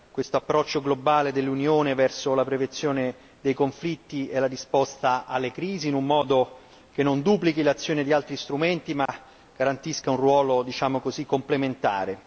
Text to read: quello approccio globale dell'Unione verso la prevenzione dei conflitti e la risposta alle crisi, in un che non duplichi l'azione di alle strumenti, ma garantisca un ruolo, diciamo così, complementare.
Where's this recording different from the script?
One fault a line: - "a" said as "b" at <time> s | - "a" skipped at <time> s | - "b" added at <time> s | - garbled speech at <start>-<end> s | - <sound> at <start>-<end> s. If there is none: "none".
- "quello" said as "questo" at 0.1 s
- "modo" added at 6.0 s
- "alle" said as "altri" at 8.1 s
- dropout at 9.1-9.1 s